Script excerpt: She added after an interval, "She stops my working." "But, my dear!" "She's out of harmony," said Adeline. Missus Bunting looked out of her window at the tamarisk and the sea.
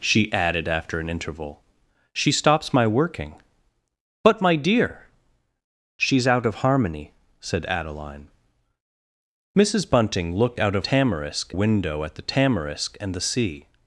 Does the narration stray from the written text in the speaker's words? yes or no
yes